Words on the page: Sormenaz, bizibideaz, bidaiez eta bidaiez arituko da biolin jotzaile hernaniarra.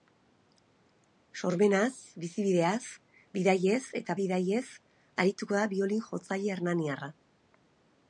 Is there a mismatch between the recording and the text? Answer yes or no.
no